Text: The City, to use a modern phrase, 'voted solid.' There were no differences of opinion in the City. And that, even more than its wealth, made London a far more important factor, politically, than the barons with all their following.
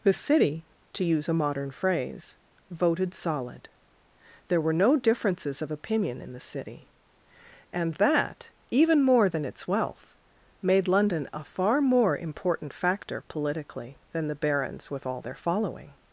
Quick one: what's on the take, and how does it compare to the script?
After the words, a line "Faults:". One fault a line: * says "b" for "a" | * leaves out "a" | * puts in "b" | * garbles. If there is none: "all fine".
The City, to use a modern phrase, 'voted solid.' There were no differences of opinion in the City. And that, even more than its wealth, made London a far more important factor, politically, than the barons with all their following.
Faults:
all fine